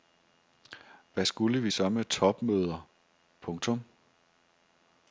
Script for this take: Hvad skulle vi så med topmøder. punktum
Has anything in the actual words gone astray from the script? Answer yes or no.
no